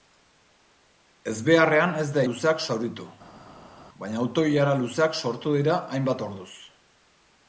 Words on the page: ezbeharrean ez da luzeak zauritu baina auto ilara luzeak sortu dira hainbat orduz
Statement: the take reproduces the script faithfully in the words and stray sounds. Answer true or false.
true